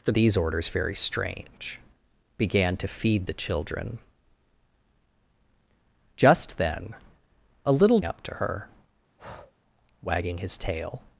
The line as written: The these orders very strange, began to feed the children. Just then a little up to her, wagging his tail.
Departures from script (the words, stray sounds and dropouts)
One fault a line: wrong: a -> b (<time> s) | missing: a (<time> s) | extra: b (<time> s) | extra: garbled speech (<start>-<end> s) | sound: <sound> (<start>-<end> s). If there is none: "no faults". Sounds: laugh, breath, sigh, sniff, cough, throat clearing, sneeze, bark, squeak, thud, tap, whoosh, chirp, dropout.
sound: breath (9.2-9.5 s)